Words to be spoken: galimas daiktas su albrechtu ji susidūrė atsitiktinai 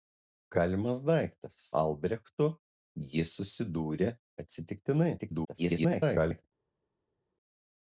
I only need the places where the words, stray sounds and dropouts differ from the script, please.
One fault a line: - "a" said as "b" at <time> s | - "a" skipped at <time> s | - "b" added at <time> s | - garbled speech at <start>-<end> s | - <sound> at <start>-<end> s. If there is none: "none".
- "su" skipped at 1.6 s
- garbled speech at 5.2-6.4 s